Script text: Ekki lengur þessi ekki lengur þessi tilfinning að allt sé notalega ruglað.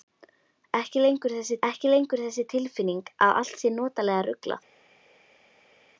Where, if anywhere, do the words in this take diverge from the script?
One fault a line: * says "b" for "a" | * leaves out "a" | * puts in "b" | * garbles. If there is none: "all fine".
all fine